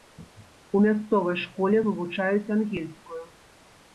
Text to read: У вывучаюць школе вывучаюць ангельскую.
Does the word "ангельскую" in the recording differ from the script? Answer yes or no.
no